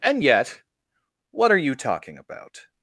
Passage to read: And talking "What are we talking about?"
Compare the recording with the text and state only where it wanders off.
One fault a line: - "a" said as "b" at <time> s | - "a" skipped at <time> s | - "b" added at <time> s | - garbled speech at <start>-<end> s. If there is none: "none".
- "talking" said as "yet" at 0.2 s
- "we" said as "you" at 1.6 s